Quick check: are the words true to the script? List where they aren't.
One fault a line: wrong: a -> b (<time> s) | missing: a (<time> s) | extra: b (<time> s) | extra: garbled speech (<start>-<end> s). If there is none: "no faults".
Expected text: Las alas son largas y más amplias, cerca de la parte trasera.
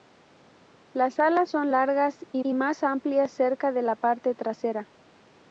extra: y (2.4 s)